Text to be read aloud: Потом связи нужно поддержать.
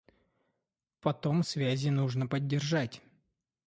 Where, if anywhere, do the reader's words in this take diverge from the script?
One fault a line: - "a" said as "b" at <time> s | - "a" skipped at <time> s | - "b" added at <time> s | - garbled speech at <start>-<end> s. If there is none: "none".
none